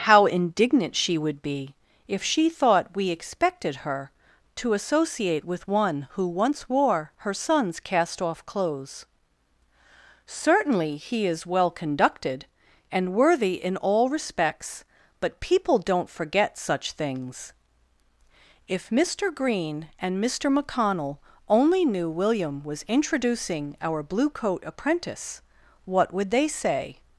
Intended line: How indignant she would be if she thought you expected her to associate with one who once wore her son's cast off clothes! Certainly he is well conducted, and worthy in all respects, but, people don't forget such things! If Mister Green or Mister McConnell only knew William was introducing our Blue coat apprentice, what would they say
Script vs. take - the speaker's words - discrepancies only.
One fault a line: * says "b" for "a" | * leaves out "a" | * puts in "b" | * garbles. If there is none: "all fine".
* says "we" for "you"
* says "and" for "or"